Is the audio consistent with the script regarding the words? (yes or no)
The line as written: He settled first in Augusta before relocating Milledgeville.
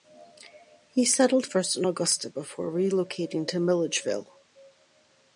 no